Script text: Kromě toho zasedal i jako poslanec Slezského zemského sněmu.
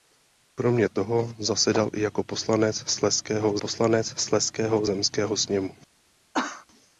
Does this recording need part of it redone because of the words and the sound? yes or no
yes